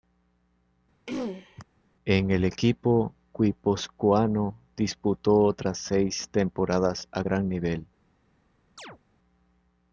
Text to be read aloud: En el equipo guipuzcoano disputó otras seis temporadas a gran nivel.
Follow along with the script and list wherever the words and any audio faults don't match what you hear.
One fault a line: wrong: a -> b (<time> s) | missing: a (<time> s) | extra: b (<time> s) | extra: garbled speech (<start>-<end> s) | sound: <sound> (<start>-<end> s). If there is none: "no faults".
sound: throat clearing (1.1-1.6 s)
sound: chirp (8.8-9.0 s)